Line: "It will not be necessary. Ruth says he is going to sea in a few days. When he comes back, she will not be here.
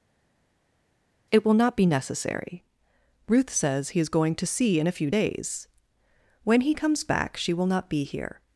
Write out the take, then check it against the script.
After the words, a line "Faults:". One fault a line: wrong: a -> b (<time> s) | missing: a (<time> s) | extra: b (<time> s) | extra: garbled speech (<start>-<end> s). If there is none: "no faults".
"It will not be necessary. Ruth says he is going to sea in a few days. When he comes back, she will not be here.
Faults:
no faults